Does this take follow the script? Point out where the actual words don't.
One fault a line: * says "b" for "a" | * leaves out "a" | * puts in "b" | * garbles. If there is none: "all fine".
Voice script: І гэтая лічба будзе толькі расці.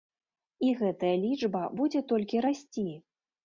all fine